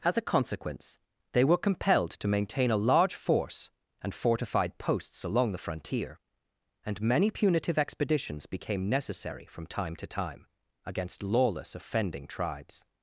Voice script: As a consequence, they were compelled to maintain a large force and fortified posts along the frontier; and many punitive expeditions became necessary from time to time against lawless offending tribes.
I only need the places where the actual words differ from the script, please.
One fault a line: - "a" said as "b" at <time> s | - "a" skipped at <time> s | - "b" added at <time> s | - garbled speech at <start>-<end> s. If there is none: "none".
none